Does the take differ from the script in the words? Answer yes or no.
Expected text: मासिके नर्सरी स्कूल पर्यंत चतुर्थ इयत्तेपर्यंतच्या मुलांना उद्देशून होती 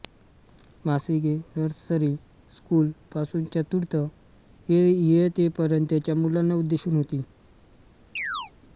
yes